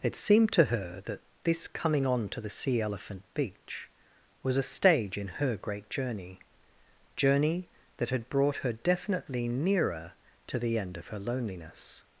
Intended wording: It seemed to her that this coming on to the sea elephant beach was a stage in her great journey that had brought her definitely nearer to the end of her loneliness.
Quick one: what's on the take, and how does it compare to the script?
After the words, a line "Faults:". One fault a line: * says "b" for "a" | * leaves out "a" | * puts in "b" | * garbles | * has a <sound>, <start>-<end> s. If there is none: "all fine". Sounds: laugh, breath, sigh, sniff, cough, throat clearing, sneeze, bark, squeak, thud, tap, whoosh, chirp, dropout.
It seemed to her that this coming on to the sea elephant beach was a stage in her great journey journey that had brought her definitely nearer to the end of her loneliness.
Faults:
* puts in "journey"